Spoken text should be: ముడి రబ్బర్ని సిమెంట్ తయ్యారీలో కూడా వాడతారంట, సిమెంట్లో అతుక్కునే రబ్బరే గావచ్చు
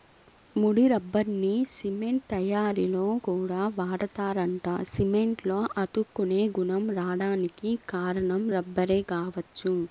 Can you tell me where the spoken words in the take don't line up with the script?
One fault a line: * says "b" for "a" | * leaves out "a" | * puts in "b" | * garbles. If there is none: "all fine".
* puts in "గుణం రాడానికి కారణం"